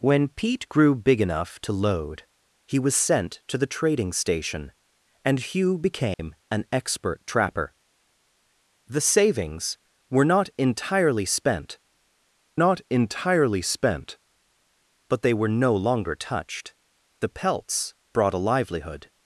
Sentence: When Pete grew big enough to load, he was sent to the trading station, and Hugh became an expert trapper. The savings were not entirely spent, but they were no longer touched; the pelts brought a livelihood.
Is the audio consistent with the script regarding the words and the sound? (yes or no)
no